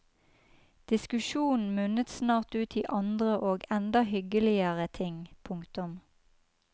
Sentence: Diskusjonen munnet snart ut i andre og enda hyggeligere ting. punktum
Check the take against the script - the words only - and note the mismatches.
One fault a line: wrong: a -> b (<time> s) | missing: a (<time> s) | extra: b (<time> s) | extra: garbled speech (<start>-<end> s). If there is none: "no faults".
no faults